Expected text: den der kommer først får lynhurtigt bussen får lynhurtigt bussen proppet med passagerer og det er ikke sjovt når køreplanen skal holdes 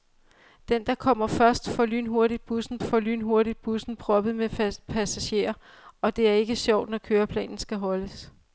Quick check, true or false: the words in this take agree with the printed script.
true